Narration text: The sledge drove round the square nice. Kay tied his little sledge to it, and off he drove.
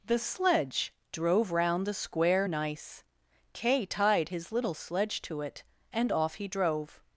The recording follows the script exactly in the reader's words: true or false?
true